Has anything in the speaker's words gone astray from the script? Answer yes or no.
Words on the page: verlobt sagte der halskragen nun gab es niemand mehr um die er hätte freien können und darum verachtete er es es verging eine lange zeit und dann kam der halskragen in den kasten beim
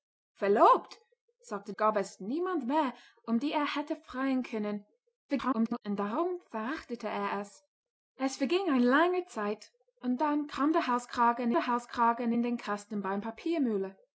yes